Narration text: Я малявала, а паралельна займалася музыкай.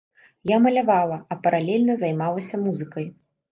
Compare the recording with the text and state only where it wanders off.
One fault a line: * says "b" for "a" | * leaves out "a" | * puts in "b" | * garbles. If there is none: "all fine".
all fine